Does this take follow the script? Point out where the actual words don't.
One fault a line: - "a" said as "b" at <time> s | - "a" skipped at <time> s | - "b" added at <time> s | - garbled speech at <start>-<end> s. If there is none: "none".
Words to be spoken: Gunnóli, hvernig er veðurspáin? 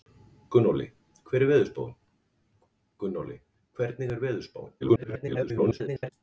- garbled speech at 4.8-6.1 s